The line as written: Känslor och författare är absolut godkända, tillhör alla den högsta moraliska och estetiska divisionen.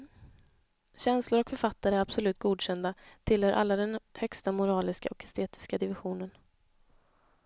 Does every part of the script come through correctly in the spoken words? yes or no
yes